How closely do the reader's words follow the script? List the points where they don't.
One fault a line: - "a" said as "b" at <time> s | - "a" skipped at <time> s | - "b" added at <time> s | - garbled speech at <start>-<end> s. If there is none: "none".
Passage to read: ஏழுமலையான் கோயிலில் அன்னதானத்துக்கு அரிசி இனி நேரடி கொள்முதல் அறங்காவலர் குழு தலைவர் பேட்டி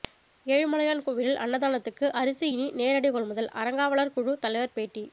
none